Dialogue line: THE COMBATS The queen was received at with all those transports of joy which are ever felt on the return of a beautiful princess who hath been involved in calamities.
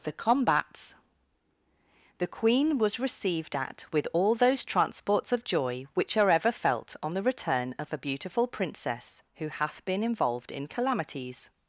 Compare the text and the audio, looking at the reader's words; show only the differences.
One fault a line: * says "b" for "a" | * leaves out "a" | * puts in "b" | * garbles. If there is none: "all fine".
all fine